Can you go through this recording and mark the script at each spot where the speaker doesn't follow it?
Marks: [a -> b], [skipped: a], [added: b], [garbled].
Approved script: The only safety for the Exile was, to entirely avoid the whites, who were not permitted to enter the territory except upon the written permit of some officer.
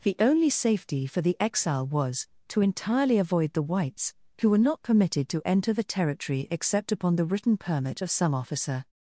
The only safety for the Exile was, to entirely avoid the whites, who were not permitted to enter the territory except upon the written permit of some officer.